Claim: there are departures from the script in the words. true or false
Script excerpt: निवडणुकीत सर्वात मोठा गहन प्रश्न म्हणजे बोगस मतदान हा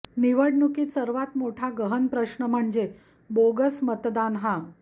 false